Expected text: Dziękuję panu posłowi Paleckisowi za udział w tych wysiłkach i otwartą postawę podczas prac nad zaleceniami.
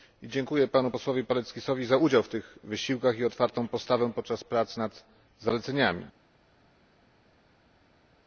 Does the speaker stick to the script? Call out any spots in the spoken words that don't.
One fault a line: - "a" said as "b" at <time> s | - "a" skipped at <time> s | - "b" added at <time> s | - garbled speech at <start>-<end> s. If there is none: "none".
none